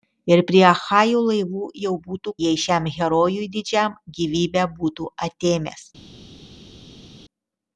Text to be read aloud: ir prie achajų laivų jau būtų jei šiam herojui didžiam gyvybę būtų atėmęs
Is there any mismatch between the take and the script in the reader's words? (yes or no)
no